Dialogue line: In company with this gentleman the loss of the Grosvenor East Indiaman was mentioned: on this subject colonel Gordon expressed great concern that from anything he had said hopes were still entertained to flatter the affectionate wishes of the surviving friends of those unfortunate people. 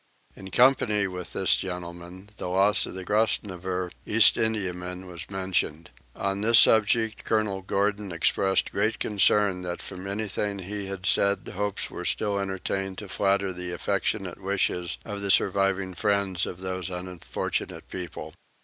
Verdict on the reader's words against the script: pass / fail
pass